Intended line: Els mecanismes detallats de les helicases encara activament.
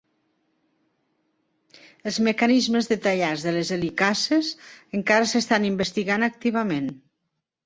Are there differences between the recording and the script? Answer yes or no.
yes